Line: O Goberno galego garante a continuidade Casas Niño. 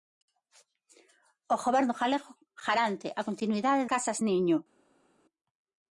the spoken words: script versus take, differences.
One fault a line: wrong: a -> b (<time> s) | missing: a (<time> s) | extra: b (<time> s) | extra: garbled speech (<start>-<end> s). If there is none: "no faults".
no faults